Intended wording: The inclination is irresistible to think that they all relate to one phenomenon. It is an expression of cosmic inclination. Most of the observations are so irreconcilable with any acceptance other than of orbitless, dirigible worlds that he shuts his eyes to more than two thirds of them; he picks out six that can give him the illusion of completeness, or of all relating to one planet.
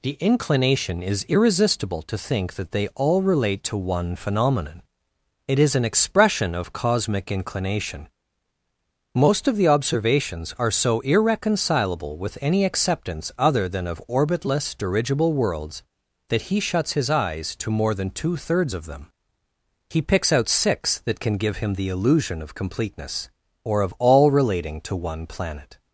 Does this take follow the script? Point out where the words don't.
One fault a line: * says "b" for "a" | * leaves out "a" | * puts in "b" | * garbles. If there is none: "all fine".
all fine